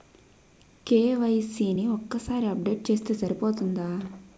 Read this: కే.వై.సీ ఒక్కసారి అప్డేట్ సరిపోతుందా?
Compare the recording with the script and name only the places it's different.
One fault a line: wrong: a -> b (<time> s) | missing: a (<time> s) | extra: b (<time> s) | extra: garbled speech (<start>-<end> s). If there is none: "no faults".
extra: ని (1.7 s)
extra: చేస్తే (2.9 s)